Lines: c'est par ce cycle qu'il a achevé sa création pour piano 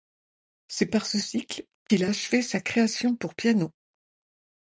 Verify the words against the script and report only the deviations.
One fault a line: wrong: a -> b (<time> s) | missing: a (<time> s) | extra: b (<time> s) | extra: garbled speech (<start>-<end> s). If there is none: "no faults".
no faults